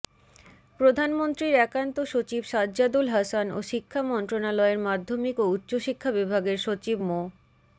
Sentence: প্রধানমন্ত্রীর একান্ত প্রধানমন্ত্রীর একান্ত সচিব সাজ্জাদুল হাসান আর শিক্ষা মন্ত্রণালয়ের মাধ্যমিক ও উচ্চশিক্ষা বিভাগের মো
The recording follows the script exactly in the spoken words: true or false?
false